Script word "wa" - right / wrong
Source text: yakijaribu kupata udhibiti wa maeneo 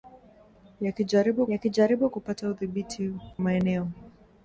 wrong